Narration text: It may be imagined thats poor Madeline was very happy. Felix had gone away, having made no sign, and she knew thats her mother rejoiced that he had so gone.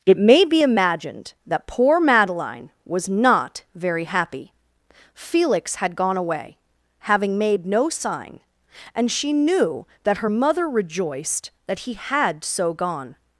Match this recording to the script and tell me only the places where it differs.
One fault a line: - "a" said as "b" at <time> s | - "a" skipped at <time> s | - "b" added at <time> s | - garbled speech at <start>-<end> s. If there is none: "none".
- "thats" said as "that" at 1.5 s
- "not" added at 3.1 s
- "thats" said as "that" at 10.0 s